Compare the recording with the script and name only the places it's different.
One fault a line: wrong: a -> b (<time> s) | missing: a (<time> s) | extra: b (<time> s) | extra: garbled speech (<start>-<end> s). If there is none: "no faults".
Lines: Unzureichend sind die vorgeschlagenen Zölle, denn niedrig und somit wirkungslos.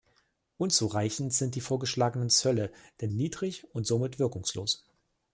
no faults